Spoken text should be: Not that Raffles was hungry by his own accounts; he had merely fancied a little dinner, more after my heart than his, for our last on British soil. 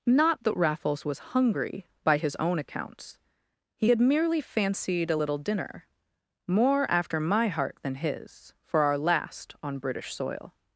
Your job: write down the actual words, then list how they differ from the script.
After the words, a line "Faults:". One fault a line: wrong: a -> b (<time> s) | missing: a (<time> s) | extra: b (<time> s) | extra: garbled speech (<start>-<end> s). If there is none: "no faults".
Not that Raffles was hungry by his own accounts; he had merely fancied a little dinner, more after my heart than his, for our last on British soil.
Faults:
no faults